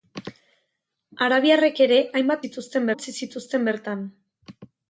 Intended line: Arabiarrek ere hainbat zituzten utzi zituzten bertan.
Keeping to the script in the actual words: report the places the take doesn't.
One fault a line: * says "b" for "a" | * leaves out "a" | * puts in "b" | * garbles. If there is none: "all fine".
all fine